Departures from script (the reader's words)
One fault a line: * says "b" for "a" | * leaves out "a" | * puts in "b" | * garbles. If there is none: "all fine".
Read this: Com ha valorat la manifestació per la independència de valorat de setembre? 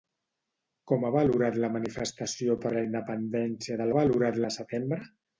all fine